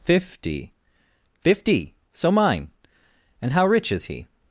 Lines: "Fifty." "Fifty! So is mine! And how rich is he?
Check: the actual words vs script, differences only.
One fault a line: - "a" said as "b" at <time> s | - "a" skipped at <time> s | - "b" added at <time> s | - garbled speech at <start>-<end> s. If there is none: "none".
- "is" skipped at 2.3 s